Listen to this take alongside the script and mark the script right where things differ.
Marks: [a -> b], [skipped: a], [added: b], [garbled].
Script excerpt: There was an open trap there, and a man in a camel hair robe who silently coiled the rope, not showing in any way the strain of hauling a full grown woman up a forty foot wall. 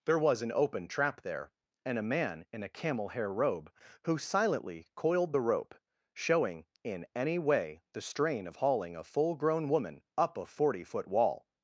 There was an open trap there, and a man in a camel hair robe who silently coiled the rope, [skipped: not] showing in any way the strain of hauling a full grown woman up a forty foot wall.